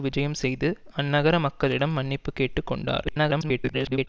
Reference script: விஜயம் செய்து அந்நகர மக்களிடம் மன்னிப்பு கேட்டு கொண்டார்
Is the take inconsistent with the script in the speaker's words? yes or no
yes